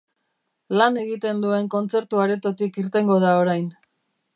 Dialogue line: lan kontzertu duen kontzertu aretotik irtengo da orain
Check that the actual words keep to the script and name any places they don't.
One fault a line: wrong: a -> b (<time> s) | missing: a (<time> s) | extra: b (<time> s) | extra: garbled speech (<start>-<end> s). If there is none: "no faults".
wrong: kontzertu -> egiten (1.0 s)